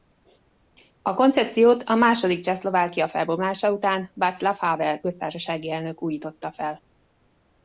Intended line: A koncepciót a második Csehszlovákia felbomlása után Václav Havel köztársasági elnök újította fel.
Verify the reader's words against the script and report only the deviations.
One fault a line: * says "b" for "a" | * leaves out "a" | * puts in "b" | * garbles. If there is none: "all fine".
all fine